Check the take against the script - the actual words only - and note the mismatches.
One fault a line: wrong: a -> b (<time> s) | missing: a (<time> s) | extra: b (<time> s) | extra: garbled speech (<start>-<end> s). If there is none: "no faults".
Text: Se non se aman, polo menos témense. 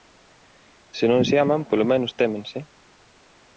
no faults